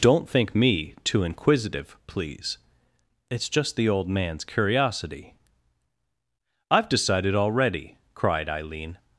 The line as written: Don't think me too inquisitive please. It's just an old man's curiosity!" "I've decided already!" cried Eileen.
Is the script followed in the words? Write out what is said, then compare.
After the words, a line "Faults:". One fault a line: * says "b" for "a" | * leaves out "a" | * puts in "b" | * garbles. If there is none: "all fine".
Don't think me too inquisitive please. It's just the old man's curiosity!" "I've decided already!" cried Eileen.
Faults:
* says "the" for "an"